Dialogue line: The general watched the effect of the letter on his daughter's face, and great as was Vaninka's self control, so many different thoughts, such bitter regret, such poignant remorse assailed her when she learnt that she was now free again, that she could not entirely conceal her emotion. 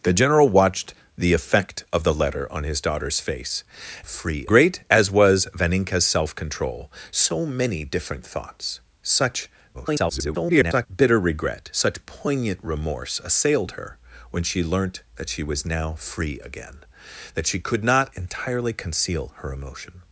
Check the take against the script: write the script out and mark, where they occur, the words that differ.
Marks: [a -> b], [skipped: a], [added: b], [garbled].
The general watched the effect of the letter on his daughter's face, [and -> free] great as was Vaninka's self control, so many different thoughts, such [garbled] bitter regret, such poignant remorse assailed her when she learnt that she was now free again, that she could not entirely conceal her emotion.